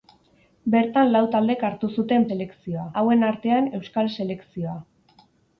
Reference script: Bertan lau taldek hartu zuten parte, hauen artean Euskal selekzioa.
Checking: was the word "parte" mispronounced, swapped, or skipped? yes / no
yes